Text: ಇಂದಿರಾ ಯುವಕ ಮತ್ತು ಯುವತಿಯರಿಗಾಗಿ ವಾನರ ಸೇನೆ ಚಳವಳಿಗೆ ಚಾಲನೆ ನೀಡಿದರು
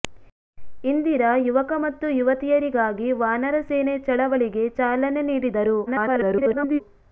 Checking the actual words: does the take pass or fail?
fail